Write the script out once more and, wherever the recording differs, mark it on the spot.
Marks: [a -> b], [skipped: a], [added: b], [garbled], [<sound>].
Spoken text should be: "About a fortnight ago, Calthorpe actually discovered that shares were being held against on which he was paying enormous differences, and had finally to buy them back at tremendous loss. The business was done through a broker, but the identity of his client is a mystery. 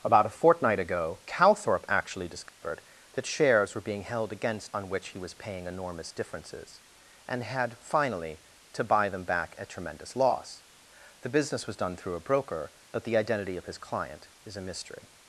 "About a fortnight ago, Calthorpe actually discovered [dropout] that shares were being held against on which he was paying enormous differences, and had finally to buy them back at tremendous loss. The business was done through a broker, but the identity of his client is a mystery.